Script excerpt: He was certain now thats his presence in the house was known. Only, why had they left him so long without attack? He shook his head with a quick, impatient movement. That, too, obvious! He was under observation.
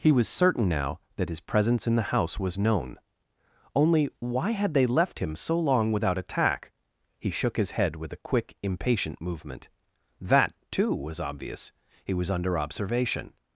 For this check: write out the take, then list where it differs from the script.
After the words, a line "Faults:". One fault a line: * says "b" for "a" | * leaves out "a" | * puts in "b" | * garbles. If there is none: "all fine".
He was certain now that his presence in the house was known. Only, why had they left him so long without attack? He shook his head with a quick, impatient movement. That, too, was obvious! He was under observation.
Faults:
* says "that" for "thats"
* puts in "was"